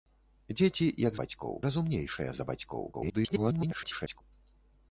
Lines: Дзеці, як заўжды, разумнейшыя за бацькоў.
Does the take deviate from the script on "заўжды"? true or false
true